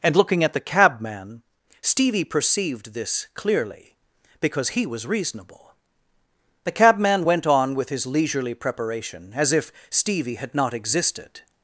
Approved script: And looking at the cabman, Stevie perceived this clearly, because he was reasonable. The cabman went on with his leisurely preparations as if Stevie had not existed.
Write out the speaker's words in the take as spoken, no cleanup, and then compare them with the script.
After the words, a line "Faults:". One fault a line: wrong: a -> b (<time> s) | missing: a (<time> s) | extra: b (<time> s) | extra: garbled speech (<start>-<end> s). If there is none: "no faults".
And looking at the cabman, Stevie perceived this clearly, because he was reasonable. The cabman went on with his leisurely preparation as if Stevie had not existed.
Faults:
wrong: preparations -> preparation (8.5 s)